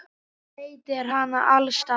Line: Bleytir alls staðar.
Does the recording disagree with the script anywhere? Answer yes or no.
yes